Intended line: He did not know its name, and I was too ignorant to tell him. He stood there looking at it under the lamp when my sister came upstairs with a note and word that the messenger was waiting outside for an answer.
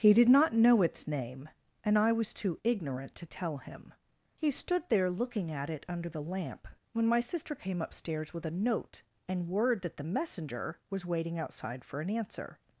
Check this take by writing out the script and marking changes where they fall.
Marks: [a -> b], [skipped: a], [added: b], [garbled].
He did not know its name, and I was too ignorant to tell him. He stood there looking at it under the lamp when my sister came upstairs with a note and word that the messenger was waiting outside for an answer.